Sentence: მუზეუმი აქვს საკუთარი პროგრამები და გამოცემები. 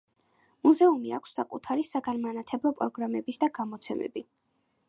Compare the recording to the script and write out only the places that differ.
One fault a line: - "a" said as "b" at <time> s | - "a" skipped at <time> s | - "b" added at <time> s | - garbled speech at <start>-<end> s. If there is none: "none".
- "საგანმანათლებლო" added at 1.9 s